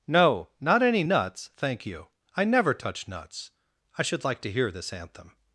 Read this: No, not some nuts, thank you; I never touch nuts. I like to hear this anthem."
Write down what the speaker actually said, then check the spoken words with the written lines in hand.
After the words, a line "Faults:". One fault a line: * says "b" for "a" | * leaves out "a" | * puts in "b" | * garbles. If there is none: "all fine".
No, not any nuts, thank you; I never touch nuts. I should like to hear this anthem."
Faults:
* says "any" for "some"
* puts in "should"